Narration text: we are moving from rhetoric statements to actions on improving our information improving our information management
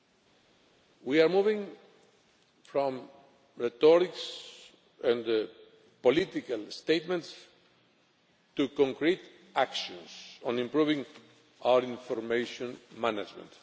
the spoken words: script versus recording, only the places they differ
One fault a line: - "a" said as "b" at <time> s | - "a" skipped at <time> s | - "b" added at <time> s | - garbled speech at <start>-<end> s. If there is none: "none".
- "and political" added at 5.0 s
- "concrete" added at 8.7 s
- "improving our information" skipped at 12.8 s